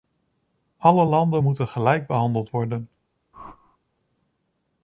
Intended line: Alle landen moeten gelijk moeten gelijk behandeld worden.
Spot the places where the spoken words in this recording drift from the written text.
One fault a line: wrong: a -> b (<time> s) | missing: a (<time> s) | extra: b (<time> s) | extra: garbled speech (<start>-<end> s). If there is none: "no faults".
missing: moeten gelijk (2.1 s)